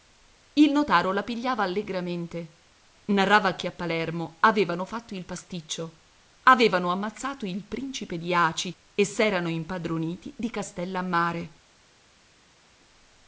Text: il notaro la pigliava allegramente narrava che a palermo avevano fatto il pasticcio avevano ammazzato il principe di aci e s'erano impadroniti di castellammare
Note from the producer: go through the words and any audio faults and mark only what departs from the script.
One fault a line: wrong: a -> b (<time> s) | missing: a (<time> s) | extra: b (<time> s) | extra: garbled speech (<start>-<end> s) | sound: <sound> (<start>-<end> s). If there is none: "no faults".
no faults